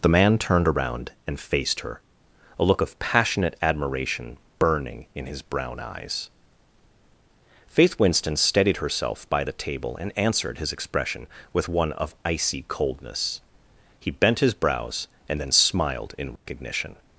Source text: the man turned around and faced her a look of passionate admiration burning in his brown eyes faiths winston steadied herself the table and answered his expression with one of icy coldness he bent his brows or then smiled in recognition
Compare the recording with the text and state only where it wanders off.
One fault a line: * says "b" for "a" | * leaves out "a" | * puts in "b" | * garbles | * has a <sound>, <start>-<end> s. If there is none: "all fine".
* says "faith" for "faiths"
* puts in "by"
* says "and" for "or"
* has a dropout, 16.4-16.5 s